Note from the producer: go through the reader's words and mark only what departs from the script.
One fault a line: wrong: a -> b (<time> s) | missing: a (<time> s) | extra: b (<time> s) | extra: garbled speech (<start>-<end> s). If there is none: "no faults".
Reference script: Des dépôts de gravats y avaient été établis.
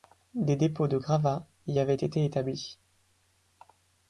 no faults